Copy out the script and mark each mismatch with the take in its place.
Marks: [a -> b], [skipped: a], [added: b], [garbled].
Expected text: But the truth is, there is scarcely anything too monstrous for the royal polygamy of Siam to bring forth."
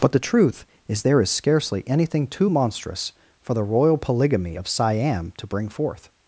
But the truth is, there is scarcely anything too monstrous for the royal polygamy of Siam to bring forth."